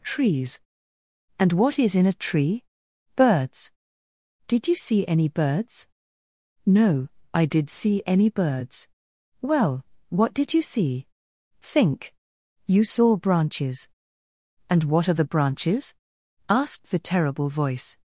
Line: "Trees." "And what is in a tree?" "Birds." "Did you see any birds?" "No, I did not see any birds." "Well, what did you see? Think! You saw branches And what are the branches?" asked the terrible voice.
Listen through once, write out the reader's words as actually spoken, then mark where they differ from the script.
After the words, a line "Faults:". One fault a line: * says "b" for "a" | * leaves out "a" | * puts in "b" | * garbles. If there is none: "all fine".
"Trees." "And what is in a tree?" "Birds." "Did you see any birds?" "No, I did see any birds." "Well, what did you see? Think! You saw branches And what are the branches?" asked the terrible voice.
Faults:
* leaves out "not"